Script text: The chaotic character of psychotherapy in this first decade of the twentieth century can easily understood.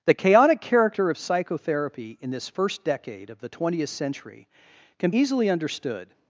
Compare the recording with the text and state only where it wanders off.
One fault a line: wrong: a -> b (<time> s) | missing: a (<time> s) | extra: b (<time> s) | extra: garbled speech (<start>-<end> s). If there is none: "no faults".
no faults